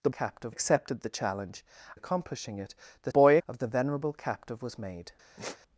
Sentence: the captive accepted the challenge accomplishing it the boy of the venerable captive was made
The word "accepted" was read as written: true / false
true